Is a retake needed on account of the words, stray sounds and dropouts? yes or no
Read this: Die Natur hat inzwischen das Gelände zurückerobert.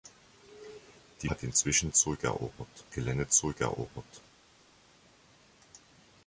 yes